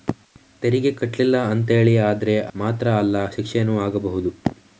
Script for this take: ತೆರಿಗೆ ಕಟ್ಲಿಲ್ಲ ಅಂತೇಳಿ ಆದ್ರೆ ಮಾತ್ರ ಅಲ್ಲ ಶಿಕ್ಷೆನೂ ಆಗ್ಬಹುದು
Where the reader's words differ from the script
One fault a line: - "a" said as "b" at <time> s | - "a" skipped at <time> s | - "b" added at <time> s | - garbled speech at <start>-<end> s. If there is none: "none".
none